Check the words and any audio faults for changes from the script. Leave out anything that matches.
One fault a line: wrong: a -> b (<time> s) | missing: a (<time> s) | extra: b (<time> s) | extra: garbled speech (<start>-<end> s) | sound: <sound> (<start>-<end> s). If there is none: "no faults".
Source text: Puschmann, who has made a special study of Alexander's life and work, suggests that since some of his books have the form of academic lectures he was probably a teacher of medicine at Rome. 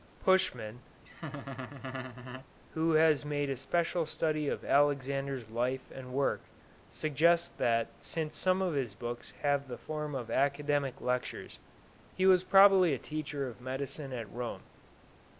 sound: laugh (1.0-2.5 s)